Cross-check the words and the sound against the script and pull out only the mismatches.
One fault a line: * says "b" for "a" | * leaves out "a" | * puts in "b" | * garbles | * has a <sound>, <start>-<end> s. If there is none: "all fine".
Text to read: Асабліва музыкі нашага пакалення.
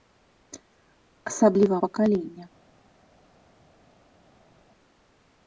* leaves out "музыкі нашага"